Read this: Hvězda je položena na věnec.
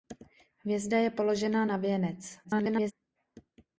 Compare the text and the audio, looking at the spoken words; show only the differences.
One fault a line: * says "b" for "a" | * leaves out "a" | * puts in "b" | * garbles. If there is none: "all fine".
* garbles